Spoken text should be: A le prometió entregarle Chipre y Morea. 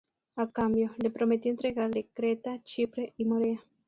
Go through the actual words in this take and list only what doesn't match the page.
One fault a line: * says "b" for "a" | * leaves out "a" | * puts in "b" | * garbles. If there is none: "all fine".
* puts in "cambio"
* puts in "Creta"